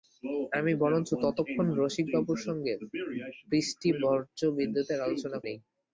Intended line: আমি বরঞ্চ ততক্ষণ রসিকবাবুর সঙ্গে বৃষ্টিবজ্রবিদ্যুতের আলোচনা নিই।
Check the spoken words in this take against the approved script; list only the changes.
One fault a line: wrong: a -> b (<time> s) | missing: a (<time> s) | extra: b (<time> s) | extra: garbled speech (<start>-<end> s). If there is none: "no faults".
no faults